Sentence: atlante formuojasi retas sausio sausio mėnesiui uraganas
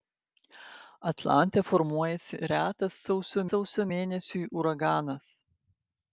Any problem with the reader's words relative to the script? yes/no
no